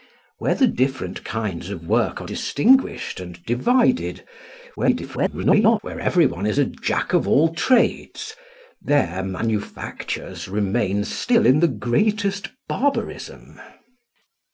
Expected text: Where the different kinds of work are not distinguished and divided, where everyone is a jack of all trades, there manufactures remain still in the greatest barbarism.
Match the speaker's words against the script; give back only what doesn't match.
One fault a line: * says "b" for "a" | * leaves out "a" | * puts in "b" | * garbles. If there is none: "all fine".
* leaves out "not"
* garbles